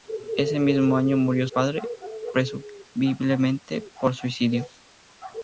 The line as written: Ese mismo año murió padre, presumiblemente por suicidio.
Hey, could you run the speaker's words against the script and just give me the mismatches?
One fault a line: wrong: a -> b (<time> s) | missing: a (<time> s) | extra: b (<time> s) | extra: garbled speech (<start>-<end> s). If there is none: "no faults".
no faults